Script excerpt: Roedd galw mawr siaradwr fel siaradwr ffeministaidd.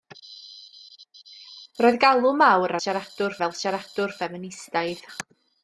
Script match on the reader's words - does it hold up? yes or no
yes